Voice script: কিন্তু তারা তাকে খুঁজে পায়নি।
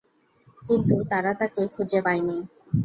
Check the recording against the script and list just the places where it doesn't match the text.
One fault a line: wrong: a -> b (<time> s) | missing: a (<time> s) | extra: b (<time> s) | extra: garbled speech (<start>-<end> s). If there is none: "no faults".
no faults